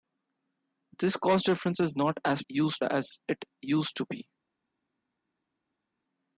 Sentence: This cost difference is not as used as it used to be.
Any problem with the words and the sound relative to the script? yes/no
no